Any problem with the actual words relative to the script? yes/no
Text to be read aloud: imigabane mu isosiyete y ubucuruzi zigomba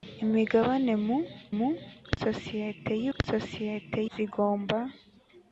yes